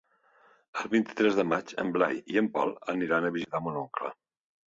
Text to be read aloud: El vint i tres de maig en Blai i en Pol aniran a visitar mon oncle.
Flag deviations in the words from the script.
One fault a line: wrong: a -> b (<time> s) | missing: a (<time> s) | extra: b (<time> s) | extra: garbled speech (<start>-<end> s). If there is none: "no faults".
no faults